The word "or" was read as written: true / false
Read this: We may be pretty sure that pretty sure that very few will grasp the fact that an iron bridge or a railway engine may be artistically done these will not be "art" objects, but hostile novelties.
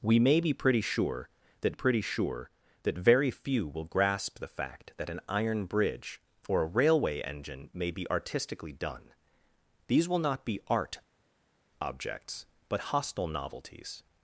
true